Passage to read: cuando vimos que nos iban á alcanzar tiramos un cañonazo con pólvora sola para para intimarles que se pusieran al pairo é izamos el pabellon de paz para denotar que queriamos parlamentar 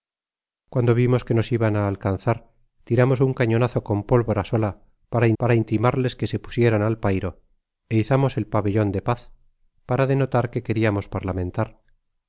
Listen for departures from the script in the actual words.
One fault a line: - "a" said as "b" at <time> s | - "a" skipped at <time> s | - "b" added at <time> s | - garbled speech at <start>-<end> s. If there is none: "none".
none